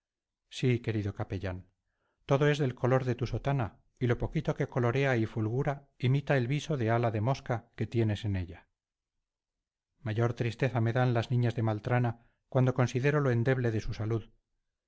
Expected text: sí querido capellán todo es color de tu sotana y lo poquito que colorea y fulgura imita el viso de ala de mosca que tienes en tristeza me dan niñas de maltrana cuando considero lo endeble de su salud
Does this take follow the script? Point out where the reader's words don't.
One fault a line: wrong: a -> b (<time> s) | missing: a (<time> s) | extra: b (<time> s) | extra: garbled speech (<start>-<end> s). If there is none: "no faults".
extra: del (2.6 s)
extra: ella mayor (8.3 s)
extra: las (11.1 s)